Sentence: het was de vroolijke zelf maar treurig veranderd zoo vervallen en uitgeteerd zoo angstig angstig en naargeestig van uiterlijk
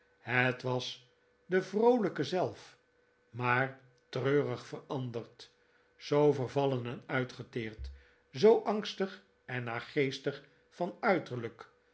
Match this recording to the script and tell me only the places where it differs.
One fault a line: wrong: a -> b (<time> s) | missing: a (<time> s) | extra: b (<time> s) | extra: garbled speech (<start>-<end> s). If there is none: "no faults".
missing: angstig (9.2 s)